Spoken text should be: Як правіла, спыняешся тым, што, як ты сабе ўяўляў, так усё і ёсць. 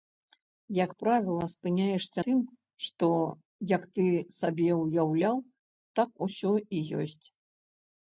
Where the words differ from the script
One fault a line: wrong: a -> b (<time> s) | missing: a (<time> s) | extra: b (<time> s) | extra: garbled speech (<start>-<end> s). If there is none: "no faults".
no faults